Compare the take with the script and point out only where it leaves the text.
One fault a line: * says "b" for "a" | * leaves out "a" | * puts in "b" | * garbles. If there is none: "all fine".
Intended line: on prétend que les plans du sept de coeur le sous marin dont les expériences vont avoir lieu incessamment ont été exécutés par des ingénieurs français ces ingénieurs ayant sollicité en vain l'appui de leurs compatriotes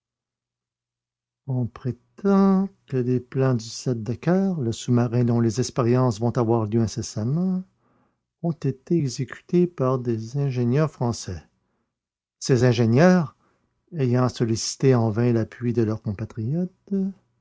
all fine